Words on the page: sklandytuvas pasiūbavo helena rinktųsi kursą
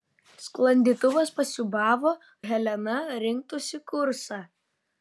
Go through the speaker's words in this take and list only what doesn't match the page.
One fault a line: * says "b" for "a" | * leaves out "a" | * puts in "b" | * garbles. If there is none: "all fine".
all fine